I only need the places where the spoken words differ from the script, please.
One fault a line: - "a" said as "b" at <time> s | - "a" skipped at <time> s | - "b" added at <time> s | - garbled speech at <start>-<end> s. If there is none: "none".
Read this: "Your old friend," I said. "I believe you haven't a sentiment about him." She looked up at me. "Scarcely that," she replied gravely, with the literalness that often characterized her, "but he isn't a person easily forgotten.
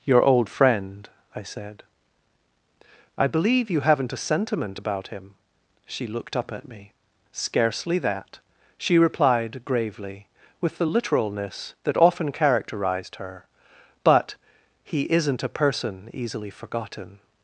none